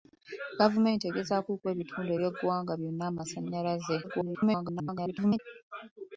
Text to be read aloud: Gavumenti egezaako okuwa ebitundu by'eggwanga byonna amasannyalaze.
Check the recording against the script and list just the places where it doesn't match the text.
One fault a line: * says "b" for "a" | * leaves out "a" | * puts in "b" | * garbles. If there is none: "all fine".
* garbles